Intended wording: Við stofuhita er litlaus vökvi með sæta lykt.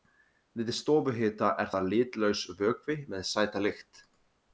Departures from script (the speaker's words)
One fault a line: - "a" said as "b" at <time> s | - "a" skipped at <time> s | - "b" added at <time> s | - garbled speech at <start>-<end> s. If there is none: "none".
- "það" added at 1.7 s